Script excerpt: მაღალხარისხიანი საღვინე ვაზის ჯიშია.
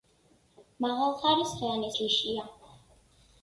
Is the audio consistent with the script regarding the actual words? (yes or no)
no